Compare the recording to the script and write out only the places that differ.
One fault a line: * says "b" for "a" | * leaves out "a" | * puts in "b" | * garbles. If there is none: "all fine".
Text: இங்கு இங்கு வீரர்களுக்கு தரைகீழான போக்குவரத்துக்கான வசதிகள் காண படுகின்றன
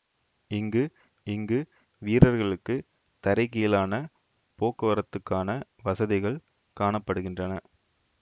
all fine